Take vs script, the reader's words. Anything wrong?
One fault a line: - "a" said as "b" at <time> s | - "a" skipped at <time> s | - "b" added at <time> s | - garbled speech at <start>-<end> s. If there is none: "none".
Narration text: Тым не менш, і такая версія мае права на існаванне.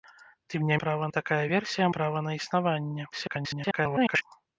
- "менш" said as "права" at 0.8 s
- "мае" skipped at 1.9 s
- garbled speech at 3.1-4.2 s